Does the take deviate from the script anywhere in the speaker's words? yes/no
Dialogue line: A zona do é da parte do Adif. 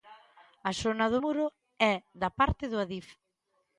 yes